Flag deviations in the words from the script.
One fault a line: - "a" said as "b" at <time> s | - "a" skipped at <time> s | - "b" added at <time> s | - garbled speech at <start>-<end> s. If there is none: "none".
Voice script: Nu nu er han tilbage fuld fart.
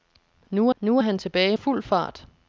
none